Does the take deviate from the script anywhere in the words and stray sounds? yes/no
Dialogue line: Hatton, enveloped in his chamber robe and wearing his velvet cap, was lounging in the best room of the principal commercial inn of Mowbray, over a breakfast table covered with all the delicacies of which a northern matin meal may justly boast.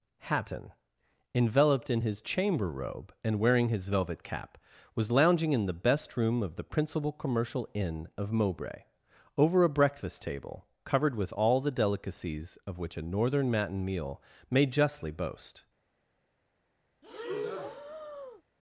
yes